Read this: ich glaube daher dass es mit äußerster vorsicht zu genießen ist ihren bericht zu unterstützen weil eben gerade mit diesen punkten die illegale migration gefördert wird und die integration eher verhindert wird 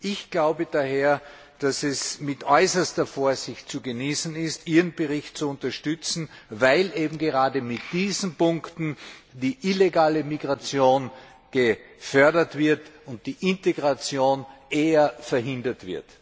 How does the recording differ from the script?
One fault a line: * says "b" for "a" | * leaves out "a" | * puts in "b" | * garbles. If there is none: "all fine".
all fine